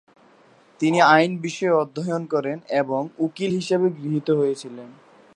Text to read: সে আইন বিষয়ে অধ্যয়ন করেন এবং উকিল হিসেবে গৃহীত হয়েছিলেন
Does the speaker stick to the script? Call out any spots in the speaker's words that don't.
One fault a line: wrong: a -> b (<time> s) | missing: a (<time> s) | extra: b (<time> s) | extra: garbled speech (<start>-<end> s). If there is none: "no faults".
wrong: সে -> তিনি (0.8 s)